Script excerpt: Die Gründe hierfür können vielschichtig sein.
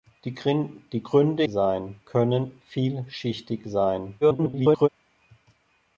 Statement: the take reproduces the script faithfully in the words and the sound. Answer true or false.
false